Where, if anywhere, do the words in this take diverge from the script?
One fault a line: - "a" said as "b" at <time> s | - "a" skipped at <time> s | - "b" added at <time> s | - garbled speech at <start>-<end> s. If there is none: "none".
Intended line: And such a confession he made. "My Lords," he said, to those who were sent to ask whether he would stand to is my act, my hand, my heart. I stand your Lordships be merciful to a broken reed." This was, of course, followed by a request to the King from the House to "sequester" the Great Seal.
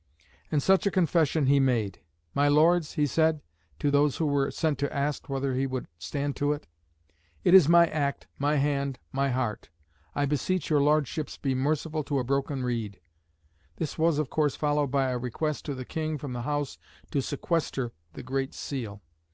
- "it it" added at 6.5 s
- "stand" said as "beseech" at 10.3 s